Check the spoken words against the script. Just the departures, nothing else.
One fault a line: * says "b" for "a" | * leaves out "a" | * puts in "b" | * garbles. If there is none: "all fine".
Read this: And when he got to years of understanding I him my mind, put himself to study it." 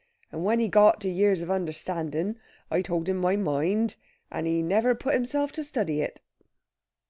* puts in "told"
* puts in "and he never"